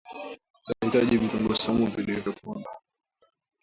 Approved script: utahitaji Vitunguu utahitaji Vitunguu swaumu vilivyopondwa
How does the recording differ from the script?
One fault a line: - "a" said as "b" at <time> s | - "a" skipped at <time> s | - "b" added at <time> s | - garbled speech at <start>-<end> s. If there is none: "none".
- "utahitaji Vitunguu" skipped at 1.6 s